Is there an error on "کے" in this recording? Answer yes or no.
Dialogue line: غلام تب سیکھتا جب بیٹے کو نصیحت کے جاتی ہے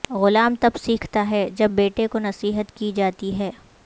yes